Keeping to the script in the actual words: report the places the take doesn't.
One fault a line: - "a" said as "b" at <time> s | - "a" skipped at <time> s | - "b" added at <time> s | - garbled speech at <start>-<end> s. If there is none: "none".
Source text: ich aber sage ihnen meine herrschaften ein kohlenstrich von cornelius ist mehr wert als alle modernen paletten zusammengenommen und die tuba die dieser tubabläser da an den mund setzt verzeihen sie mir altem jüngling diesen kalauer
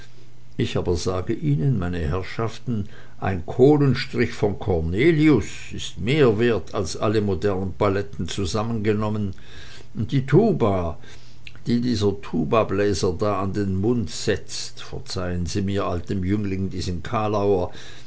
none